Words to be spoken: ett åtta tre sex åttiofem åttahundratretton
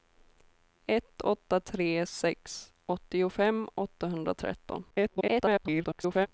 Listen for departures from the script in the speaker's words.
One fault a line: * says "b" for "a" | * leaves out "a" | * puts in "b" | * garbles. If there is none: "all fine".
* garbles